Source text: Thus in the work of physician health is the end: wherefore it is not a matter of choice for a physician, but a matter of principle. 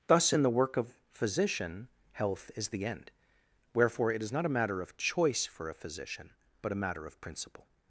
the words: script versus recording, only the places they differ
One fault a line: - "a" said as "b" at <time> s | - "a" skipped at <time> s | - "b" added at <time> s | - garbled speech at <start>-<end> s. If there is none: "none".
none